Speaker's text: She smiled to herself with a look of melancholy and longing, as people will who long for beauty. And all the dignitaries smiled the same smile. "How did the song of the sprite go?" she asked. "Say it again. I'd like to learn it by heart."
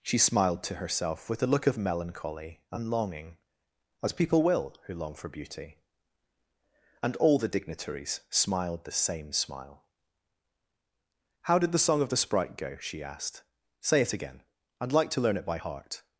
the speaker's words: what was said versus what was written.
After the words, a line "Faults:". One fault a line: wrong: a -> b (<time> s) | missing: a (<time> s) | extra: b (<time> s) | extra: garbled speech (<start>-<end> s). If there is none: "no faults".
She smiled to herself with a look of melancholy and longing, as people will who long for beauty. And all the dignitaries smiled the same smile. "How did the song of the sprite go?" she asked. "Say it again. I'd like to learn it by heart."
Faults:
no faults